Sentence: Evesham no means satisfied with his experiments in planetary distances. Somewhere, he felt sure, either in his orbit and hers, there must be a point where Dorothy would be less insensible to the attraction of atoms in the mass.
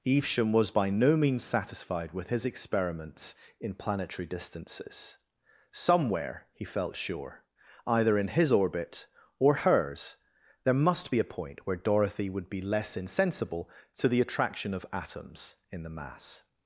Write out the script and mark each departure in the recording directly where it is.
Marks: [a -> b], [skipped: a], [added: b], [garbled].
Evesham [added: was by] no means satisfied with his experiments in planetary distances. Somewhere, he felt sure, either in his orbit [and -> or] hers, there must be a point where Dorothy would be less insensible to the attraction of atoms in the mass.